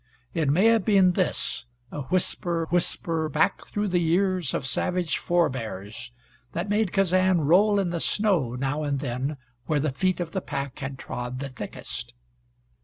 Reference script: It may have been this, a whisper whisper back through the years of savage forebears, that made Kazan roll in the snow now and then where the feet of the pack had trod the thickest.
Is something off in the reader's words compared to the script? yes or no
no